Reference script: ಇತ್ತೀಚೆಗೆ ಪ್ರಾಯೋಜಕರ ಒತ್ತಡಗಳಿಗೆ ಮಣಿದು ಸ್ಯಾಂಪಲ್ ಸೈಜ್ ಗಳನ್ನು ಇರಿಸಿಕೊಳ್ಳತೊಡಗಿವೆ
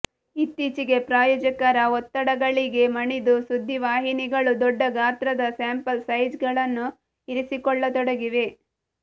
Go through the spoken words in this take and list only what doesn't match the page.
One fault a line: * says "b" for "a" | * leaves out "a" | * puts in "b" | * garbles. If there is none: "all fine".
* puts in "ಸುದ್ದಿವಾಹಿನಿಗಳು ದೊಡ್ಡ ಗಾತ್ರದ"